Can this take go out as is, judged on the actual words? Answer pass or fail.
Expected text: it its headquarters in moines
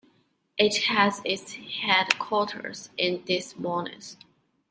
fail